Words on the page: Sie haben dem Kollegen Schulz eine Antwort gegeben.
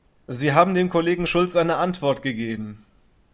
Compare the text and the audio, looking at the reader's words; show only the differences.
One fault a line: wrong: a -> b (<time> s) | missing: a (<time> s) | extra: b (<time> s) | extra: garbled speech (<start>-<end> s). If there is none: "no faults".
no faults